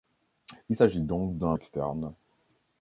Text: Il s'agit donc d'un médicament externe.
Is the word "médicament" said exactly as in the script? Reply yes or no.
no